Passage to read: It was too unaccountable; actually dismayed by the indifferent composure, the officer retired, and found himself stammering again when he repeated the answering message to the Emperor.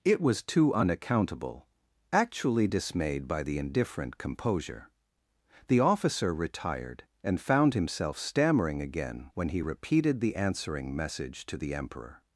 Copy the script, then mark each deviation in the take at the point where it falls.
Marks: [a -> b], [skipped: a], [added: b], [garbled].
It was too unaccountable; actually dismayed by the indifferent composure, the officer retired, and found himself stammering again when he repeated the answering message to the Emperor.